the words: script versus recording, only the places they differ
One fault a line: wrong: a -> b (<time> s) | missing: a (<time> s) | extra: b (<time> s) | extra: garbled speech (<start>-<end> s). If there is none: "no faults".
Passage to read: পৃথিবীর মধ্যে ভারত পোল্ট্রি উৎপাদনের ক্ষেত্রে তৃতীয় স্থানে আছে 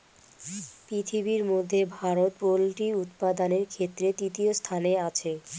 no faults